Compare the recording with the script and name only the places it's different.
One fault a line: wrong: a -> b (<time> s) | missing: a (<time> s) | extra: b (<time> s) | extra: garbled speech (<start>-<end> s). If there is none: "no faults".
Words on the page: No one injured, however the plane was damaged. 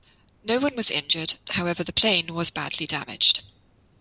extra: was (0.8 s)
extra: badly (2.5 s)